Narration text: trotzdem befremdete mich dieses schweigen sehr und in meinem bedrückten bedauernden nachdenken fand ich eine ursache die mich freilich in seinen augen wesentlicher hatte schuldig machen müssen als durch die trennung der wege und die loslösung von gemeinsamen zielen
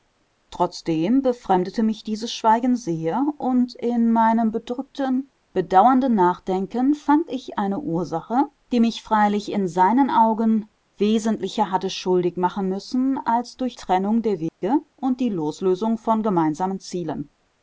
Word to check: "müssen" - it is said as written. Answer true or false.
true